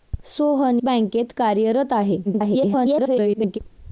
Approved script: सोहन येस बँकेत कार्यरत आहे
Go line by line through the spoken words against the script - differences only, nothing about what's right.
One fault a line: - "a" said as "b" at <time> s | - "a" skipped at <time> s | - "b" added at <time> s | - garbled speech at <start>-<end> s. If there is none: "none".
- "येस" skipped at 0.8 s
- garbled speech at 2.2-3.6 s